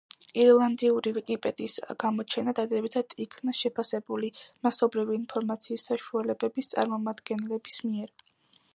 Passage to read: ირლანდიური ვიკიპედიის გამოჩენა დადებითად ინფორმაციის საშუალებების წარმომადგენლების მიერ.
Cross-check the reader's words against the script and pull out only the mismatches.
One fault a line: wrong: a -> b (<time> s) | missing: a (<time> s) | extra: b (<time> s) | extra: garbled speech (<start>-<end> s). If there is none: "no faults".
extra: იქნა შეფასებული მასობრივი (3.3 s)